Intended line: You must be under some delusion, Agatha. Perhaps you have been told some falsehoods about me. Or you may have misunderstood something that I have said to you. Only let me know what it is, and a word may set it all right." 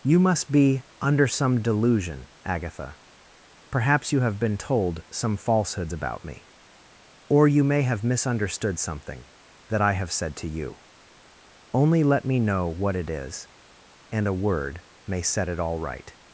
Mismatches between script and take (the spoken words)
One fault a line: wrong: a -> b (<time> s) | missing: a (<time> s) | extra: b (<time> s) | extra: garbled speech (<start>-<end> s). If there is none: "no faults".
no faults